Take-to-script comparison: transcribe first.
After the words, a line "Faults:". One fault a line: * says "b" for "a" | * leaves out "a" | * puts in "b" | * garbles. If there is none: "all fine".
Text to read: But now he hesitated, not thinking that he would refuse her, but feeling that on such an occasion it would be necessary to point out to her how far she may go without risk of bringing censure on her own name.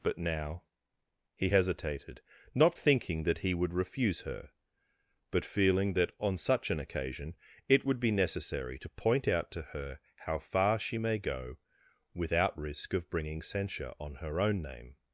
But now he hesitated, not thinking that he would refuse her, but feeling that on such an occasion it would be necessary to point out to her how far she may go without risk of bringing censure on her own name.
Faults:
all fine